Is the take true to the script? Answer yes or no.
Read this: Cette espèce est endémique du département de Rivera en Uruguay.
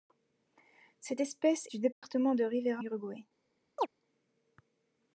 no